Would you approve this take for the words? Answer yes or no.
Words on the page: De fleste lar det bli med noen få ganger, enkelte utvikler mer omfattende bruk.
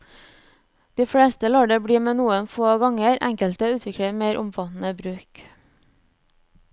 yes